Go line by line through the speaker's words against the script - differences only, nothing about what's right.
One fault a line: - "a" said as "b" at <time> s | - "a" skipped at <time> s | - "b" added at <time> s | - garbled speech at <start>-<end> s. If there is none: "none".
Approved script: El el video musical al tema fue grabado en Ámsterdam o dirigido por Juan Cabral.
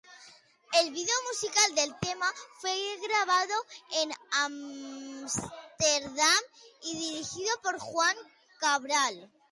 - "el" skipped at 0.9 s
- "al" said as "del" at 1.8 s
- "o" said as "y" at 6.8 s